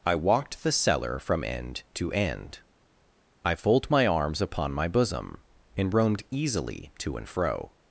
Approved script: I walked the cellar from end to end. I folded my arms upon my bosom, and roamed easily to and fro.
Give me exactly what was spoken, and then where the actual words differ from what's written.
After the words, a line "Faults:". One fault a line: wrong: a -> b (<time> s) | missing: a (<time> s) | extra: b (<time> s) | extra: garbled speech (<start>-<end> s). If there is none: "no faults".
I walked the cellar from end to end. I fold my arms upon my bosom, and roamed easily to and fro.
Faults:
wrong: folded -> fold (3.5 s)